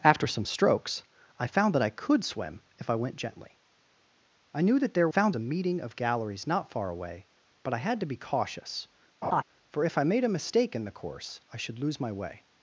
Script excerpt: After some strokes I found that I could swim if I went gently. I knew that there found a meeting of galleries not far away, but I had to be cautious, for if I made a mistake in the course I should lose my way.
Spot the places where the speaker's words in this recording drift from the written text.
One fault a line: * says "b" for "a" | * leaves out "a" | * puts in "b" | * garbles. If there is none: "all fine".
all fine